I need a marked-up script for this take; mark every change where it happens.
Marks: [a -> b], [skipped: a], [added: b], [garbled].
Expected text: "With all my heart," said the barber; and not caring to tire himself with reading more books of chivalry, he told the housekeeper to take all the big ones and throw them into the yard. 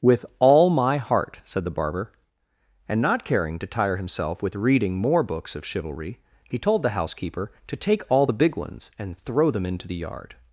"With all my heart," said the barber; and not caring to tire himself with reading more books of chivalry, he told the housekeeper to take all the big ones and throw them into the yard.